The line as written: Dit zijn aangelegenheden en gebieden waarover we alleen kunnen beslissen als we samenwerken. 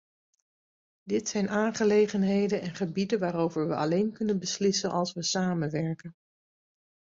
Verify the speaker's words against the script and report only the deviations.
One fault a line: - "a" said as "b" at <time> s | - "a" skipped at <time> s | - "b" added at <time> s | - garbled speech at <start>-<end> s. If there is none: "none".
none